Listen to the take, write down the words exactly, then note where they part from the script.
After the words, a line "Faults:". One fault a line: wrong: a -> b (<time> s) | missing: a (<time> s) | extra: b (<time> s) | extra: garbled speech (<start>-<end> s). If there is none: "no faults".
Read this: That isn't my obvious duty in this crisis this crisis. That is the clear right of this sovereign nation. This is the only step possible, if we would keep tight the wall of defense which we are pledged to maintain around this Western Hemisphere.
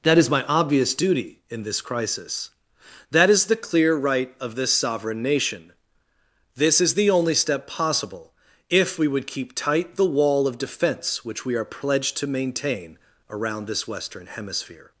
That is my obvious duty in this crisis. That is the clear right of this sovereign nation. This is the only step possible, if we would keep tight the wall of defense which we are pledged to maintain around this Western Hemisphere.
Faults:
wrong: isn't -> is (0.2 s)
missing: this crisis (2.5 s)